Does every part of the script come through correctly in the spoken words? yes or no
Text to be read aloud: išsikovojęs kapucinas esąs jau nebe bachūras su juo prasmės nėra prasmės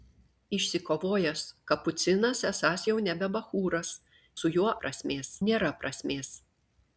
yes